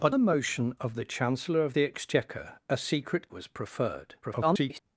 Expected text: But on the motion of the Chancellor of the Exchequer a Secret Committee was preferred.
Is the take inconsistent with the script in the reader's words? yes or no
yes